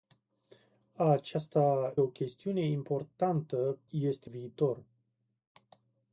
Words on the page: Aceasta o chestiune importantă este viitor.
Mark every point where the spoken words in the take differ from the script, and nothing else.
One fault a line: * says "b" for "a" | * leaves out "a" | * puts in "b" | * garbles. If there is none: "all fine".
all fine